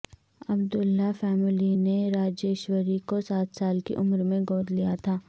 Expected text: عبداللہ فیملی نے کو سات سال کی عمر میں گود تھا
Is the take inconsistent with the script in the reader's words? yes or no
yes